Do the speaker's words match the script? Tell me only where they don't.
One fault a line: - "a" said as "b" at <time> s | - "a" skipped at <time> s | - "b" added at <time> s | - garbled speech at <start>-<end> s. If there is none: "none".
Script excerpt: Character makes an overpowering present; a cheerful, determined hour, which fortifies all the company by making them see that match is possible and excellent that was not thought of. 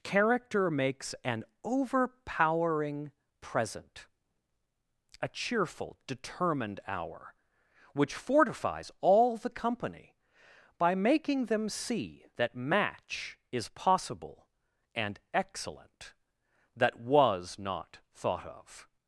none